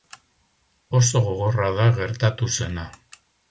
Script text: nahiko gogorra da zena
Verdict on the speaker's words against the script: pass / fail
fail